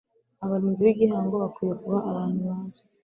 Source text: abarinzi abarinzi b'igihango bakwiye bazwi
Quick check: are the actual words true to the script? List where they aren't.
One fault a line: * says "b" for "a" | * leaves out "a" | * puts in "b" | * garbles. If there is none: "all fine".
* leaves out "abarinzi"
* puts in "kuba abantu"